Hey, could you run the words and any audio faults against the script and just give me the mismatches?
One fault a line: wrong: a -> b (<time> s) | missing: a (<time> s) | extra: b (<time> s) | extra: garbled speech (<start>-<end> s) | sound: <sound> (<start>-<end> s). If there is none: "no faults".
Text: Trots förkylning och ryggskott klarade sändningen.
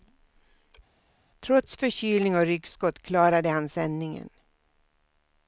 extra: han (3.5 s)